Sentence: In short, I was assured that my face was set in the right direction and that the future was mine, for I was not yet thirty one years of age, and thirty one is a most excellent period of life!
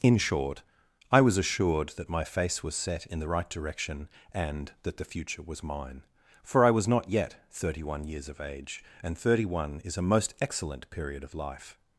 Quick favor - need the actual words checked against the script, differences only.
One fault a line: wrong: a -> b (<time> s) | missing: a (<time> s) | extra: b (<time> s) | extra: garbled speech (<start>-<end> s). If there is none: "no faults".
no faults